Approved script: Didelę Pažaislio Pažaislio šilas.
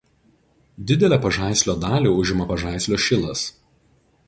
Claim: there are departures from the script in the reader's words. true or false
true